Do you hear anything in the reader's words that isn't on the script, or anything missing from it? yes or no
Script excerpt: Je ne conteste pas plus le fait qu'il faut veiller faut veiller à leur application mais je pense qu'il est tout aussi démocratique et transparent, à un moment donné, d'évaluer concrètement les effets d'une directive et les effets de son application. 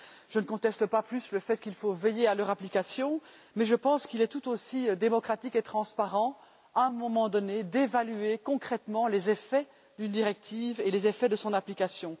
yes